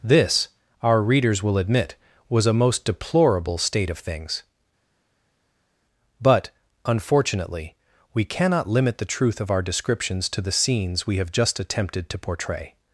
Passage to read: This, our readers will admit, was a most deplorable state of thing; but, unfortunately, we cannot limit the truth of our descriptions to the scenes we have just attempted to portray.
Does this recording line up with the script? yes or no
no